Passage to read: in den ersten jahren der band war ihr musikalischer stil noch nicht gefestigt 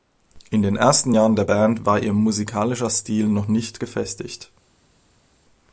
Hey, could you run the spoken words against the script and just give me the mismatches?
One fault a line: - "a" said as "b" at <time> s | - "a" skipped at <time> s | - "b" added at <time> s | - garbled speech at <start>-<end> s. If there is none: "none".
none